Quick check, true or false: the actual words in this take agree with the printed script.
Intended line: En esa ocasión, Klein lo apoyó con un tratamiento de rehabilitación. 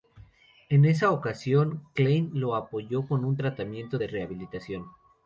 true